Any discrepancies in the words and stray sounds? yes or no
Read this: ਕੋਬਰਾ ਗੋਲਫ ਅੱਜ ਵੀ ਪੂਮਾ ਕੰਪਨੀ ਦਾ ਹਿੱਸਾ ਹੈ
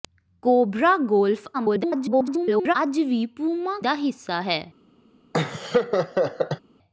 yes